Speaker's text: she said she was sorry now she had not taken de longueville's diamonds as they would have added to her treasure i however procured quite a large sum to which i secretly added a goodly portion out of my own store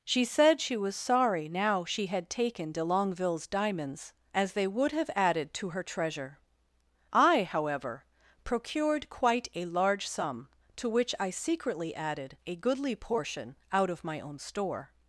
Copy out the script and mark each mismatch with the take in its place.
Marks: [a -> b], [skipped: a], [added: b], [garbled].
she said she was sorry now she had [skipped: not] taken de longueville's diamonds as they would have added to her treasure i however procured quite a large sum to which i secretly added a goodly portion out of my own store